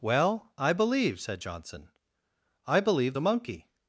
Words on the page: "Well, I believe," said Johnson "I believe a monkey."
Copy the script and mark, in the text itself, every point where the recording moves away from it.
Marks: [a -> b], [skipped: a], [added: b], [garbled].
"Well, I believe," said Johnson "I believe a monkey."